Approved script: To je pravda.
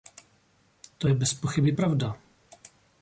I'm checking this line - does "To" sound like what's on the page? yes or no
yes